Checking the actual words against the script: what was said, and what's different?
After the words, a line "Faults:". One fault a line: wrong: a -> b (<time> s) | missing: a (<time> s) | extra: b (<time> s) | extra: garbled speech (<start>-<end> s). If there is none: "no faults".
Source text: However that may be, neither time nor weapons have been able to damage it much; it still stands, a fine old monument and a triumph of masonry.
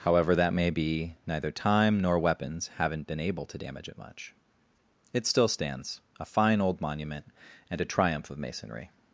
However that may be, neither time nor weapons haven't been able to damage it much; it still stands, a fine old monument and a triumph of masonry.
Faults:
wrong: have -> haven't (2.8 s)